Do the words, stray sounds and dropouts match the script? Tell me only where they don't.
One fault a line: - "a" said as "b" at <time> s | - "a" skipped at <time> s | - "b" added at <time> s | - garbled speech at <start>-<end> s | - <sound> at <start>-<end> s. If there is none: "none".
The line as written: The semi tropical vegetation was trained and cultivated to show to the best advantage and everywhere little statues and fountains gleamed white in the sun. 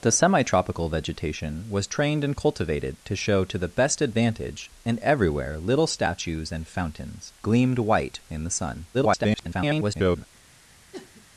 - garbled speech at 8.9-10.2 s
- sniff at 10.9-11.3 s